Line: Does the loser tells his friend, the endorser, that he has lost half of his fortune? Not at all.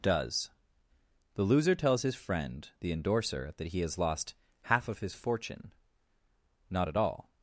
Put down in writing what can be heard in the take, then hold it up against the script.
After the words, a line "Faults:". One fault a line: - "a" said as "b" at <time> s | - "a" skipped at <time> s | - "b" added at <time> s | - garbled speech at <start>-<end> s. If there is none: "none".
Does the loser tells his friend, the endorser, that he has lost half of his fortune? Not at all.
Faults:
none